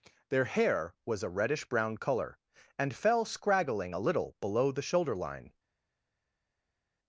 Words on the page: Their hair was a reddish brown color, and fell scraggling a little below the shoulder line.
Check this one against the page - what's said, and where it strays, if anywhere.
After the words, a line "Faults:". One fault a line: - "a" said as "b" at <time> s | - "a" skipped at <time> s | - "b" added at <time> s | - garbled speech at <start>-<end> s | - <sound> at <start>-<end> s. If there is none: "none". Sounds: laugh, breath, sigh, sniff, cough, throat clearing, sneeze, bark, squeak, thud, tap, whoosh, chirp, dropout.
Their hair was a reddish brown color, and fell scraggling a little below the shoulder line.
Faults:
none